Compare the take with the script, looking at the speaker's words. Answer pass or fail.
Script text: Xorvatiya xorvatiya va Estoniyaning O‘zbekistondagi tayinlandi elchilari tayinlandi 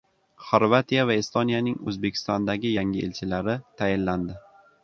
fail